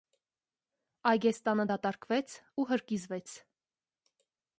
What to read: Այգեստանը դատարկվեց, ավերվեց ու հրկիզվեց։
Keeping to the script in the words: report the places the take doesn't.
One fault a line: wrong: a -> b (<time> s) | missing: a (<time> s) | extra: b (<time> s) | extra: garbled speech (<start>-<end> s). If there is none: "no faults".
missing: ավերվեց (2.3 s)